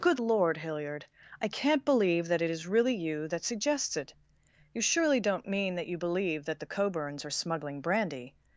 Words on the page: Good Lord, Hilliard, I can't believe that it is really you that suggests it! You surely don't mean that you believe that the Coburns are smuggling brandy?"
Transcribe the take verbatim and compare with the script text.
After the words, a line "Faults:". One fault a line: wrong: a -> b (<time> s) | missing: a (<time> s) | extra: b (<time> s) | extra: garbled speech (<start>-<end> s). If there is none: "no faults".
Good Lord, Hilliard, I can't believe that it is really you that suggests it! You surely don't mean that you believe that the Coburns are smuggling brandy?"
Faults:
no faults